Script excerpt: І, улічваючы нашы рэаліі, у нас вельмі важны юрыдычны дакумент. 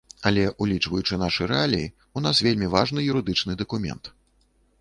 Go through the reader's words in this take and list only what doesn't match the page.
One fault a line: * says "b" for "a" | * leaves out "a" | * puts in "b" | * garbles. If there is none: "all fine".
* says "Але" for "І"